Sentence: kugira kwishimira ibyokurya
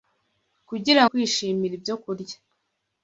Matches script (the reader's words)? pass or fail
pass